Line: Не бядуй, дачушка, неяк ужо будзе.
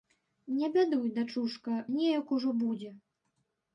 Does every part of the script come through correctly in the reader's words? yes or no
yes